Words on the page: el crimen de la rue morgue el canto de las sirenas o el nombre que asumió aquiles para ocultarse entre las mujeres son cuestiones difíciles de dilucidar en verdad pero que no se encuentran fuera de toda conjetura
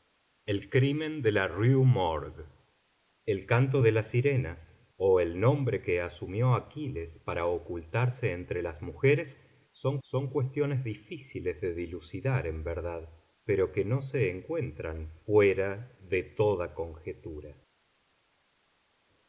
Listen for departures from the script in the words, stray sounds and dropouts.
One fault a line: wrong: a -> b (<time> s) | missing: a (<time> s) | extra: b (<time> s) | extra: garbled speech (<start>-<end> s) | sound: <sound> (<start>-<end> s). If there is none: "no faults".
extra: son (10.0 s)